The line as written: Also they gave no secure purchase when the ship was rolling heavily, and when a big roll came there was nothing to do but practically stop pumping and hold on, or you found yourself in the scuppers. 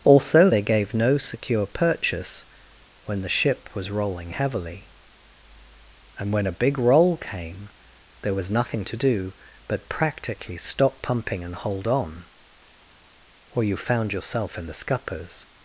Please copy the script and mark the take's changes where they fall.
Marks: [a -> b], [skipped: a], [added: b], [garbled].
Also they gave no secure purchase when the ship was rolling heavily, and when a big roll came there was nothing to do but practically stop pumping and hold on, or you found yourself in the scuppers.